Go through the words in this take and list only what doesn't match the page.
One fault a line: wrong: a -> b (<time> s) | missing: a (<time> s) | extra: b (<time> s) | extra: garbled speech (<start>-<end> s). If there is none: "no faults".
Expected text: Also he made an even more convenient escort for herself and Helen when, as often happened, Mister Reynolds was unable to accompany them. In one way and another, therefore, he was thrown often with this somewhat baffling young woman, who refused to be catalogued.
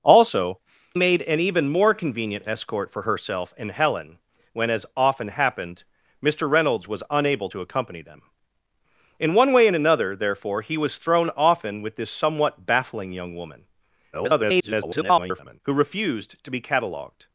missing: he (0.6 s)
extra: garbled speech (14.1-15.6 s)